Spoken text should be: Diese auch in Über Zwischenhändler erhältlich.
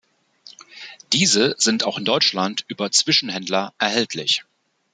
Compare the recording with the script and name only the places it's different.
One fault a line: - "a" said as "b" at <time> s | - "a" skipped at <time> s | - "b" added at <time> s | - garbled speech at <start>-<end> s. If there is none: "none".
- "sind" added at 1.6 s
- "Deutschland" added at 2.0 s